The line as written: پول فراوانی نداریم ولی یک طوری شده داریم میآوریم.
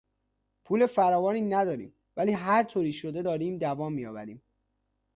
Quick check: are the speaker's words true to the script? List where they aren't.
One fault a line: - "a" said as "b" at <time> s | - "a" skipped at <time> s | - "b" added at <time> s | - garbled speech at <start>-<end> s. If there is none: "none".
- "یک" said as "هر" at 2.3 s
- "دوام" added at 3.6 s